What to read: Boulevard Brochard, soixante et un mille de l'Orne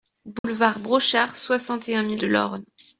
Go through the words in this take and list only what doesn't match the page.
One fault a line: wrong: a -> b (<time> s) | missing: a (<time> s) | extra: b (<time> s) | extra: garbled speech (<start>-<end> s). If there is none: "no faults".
no faults